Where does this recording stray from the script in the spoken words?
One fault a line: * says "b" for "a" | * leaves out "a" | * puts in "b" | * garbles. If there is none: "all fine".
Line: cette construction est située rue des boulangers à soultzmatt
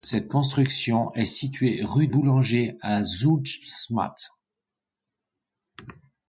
* leaves out "des"